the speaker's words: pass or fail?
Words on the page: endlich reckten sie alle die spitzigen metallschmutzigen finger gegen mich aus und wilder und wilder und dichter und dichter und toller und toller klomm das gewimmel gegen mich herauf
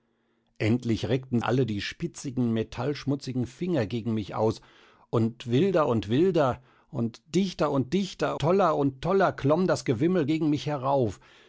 fail